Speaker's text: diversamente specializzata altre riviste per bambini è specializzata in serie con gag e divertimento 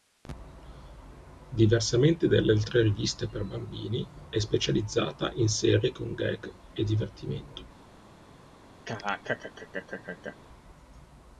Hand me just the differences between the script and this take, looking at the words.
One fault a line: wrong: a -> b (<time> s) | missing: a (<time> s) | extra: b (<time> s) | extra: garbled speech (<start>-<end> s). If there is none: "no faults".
wrong: specializzata -> dalle (2.3 s)